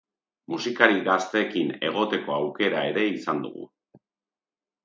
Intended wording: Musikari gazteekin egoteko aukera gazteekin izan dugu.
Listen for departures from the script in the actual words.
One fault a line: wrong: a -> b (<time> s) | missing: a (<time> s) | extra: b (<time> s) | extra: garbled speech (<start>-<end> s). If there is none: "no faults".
wrong: gazteekin -> ere (3.0 s)